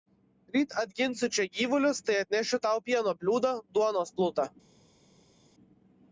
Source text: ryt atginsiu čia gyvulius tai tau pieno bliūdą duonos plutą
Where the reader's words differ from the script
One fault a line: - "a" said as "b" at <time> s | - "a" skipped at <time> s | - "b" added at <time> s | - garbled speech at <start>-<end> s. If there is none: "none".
- "atnešiu" added at 2.2 s